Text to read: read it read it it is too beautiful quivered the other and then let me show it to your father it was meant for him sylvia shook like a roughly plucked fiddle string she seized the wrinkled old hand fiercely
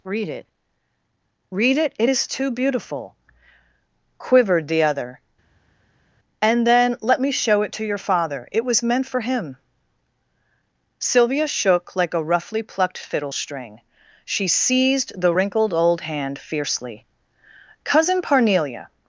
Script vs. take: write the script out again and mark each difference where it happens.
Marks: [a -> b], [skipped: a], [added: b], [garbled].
read it read it it is too beautiful quivered the other and then let me show it to your father it was meant for him sylvia shook like a roughly plucked fiddle string she seized the wrinkled old hand fiercely [added: cousin parnelia]